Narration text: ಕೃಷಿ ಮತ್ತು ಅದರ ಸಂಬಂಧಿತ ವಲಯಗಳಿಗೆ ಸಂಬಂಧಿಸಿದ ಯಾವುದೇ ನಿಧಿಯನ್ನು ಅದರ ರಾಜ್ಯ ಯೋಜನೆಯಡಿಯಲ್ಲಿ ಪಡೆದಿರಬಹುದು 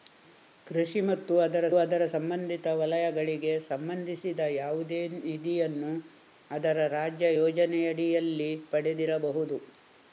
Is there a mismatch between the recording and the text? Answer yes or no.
yes